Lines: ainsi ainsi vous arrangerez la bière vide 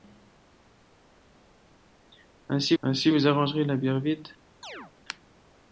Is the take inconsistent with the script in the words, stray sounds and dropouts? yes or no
yes